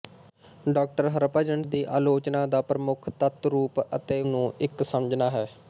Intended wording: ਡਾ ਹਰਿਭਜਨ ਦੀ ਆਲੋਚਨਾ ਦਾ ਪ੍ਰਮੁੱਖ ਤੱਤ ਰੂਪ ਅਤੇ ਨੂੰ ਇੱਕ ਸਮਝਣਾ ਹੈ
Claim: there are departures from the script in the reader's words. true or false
false